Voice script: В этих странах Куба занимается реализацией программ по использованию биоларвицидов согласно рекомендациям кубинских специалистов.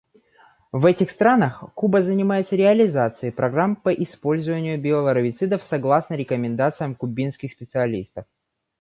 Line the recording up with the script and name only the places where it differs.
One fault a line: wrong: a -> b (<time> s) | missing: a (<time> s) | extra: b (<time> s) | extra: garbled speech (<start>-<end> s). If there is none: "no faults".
no faults